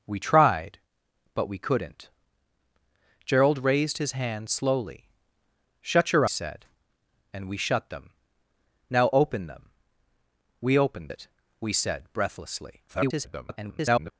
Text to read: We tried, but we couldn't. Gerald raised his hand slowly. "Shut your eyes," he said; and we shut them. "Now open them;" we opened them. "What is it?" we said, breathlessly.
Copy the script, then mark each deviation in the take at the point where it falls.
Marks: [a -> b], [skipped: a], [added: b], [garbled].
We tried, but we couldn't. Gerald raised his hand slowly. "Shut your [skipped: eyes," he] said; and we shut them. "Now open them;" we opened [skipped: them. "What is] it?" we said, breathlessly. [garbled]